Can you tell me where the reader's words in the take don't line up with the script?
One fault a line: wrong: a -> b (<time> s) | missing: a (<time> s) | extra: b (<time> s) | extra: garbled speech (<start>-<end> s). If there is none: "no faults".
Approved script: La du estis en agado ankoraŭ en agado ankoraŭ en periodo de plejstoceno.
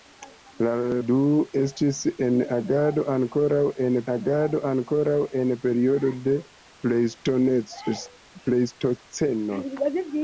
no faults